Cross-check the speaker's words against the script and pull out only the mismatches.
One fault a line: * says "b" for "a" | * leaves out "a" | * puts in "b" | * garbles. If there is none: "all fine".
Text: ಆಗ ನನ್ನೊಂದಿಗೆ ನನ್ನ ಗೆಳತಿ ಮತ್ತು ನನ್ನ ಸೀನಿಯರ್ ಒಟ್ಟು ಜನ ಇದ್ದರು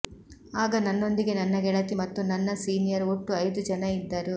* puts in "ಐದು"